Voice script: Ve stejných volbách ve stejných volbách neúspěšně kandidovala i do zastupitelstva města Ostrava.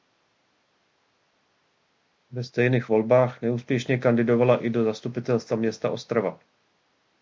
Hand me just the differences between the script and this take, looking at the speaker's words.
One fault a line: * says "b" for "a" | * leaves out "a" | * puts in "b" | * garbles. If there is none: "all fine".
* leaves out "ve stejných volbách"